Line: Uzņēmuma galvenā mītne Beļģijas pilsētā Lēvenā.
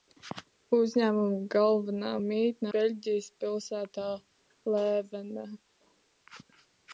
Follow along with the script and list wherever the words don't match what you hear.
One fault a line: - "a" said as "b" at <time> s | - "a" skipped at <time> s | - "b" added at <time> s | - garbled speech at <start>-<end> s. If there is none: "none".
none